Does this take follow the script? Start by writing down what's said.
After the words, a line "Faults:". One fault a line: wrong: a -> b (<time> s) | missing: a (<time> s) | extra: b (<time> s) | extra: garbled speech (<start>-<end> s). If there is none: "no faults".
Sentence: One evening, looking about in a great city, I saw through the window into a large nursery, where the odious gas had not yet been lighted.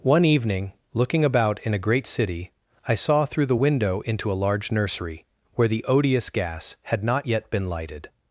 One evening, looking about in a great city, I saw through the window into a large nursery, where the odious gas had not yet been lighted.
Faults:
no faults